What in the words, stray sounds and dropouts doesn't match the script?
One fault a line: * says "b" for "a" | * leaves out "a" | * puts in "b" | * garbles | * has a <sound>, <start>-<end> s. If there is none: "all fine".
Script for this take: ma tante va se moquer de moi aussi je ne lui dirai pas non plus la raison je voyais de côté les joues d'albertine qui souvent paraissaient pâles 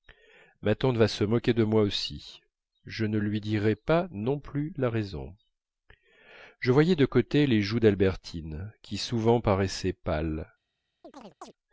* has a chirp, 11.0-11.5 s